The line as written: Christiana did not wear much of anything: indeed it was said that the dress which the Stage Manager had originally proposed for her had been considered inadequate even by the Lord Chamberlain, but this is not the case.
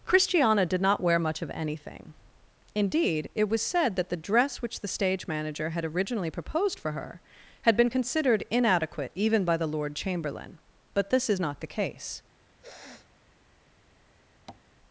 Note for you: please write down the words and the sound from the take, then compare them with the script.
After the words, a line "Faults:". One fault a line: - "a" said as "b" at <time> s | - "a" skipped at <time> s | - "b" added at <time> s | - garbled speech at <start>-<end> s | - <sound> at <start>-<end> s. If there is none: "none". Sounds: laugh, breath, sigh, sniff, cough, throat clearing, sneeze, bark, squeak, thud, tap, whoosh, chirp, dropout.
Christiana did not wear much of anything: indeed it was said that the dress which the Stage Manager had originally proposed for her had been considered inadequate even by the Lord Chamberlain, but this is not the case.
Faults:
- sniff at 12.6-13.2 s
- tap at 14.5-14.7 s